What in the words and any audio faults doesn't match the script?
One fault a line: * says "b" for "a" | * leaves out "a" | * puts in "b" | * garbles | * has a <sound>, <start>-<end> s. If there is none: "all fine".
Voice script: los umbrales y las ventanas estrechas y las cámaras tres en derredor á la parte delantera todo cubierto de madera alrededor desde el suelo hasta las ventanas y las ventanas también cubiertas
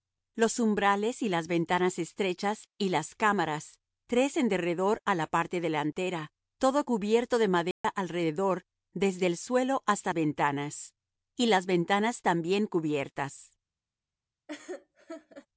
* has a dropout, 7.7-7.8 s
* leaves out "las"
* has a laugh, 14.5-15.5 s